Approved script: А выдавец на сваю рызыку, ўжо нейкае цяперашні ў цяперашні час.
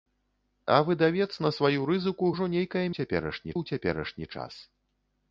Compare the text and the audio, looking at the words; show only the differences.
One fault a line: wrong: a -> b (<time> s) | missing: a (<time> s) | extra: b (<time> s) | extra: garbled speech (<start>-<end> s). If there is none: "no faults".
no faults